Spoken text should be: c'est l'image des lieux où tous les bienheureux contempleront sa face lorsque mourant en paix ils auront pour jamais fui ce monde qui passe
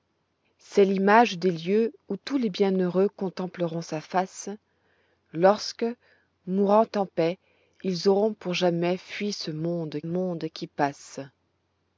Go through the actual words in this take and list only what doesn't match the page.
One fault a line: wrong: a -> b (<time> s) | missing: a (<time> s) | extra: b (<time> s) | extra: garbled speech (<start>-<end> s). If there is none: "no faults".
extra: monde (10.0 s)